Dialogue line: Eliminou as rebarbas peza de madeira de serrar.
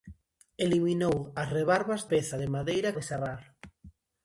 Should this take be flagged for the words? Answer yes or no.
no